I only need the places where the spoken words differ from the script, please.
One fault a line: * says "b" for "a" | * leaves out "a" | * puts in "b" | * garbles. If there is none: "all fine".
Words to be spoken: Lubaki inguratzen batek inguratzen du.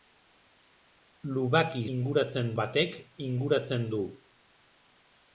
all fine